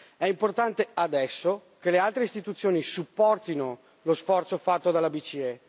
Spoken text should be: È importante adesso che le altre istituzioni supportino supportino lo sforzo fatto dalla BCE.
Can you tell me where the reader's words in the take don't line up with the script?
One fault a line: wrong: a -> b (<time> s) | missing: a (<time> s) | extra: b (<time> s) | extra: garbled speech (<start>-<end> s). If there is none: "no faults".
missing: supportino (3.8 s)